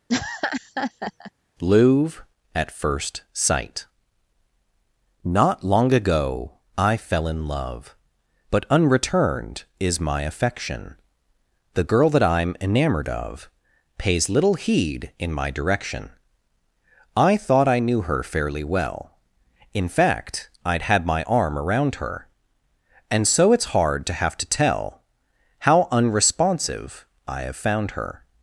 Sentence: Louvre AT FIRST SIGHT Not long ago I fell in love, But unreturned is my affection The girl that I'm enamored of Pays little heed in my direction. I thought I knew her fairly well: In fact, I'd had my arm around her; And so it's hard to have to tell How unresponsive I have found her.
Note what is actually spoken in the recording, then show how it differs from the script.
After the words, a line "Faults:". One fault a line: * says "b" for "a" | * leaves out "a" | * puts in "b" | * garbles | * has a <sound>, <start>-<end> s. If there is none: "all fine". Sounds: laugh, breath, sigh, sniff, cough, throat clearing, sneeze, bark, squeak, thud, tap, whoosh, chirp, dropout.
Louvre AT FIRST SIGHT Not long ago I fell in love, But unreturned is my affection The girl that I'm enamored of Pays little heed in my direction. I thought I knew her fairly well: In fact, I'd had my arm around her; And so it's hard to have to tell How unresponsive I have found her.
Faults:
* has a laugh, 0.1-1.3 s